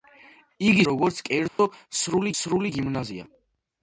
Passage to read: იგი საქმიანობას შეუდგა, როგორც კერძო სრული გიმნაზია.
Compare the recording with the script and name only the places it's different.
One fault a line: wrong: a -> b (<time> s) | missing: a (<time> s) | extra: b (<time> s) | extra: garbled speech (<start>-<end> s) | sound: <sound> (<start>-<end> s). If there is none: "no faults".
missing: საქმიანობას შეუდგა (0.8 s)
sound: dropout (1.5-1.6 s)
extra: სრული (2.4 s)